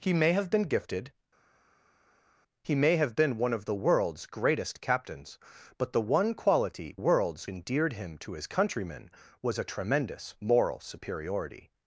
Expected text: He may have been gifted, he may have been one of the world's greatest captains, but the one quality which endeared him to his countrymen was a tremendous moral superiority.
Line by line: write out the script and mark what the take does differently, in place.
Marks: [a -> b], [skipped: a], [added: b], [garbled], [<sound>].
He may have been gifted, he may have been one of the world's greatest captains, but the one quality [which -> world's] endeared him to his countrymen was a tremendous moral superiority.